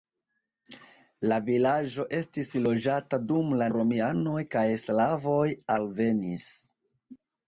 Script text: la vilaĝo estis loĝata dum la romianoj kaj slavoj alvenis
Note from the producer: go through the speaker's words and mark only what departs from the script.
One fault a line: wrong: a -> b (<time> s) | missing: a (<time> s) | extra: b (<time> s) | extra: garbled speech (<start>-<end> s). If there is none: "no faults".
no faults